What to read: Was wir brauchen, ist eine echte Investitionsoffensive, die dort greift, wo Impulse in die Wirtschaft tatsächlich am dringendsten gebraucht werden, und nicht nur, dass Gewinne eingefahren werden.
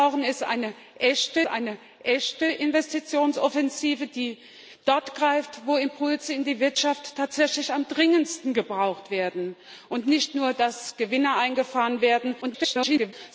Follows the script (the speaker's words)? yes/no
no